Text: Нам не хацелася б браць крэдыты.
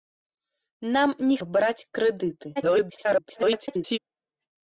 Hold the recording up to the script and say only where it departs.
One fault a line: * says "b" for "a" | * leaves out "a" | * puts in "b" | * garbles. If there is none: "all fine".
* leaves out "хацелася"
* garbles